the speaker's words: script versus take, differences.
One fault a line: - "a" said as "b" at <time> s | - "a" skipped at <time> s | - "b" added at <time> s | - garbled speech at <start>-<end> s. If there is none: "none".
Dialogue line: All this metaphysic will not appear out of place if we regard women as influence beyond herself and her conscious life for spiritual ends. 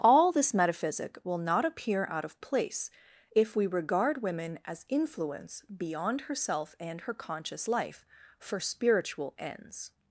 none